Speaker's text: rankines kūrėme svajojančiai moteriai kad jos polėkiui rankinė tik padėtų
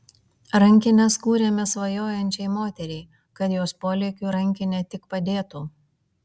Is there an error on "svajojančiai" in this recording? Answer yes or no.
no